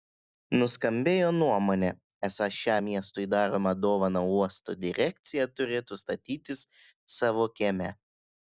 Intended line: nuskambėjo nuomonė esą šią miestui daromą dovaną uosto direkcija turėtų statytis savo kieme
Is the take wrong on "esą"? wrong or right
right